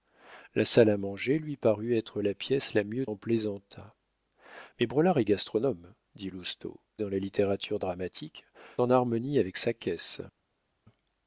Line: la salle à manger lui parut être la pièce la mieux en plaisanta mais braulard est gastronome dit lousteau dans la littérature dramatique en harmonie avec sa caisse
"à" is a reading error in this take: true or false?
false